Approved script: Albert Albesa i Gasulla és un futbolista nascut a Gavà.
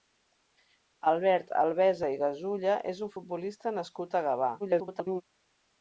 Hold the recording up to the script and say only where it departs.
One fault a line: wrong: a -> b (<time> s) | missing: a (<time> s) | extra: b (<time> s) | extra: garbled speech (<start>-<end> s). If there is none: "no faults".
extra: garbled speech (4.6-5.2 s)